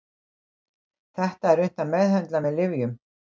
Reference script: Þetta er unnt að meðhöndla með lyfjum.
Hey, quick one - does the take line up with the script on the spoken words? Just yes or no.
yes